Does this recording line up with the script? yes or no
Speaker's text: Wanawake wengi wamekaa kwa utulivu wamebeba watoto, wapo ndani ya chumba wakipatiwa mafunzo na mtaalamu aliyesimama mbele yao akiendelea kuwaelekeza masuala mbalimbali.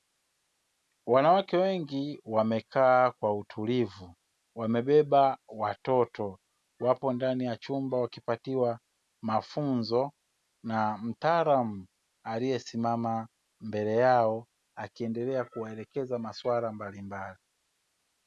yes